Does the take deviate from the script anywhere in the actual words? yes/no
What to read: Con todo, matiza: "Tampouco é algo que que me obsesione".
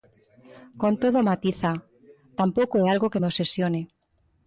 yes